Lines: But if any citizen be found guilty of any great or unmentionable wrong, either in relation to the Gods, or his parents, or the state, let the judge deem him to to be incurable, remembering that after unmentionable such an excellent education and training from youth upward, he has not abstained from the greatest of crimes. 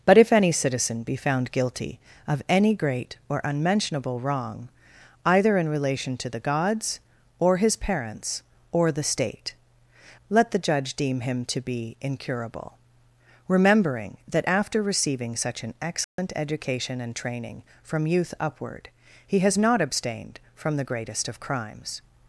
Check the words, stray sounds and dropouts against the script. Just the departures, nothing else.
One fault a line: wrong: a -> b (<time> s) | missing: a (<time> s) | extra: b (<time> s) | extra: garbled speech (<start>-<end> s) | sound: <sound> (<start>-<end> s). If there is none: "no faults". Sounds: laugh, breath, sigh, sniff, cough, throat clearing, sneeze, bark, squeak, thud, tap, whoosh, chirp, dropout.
missing: to (11.6 s)
wrong: unmentionable -> receiving (14.8 s)
sound: dropout (16.0-16.2 s)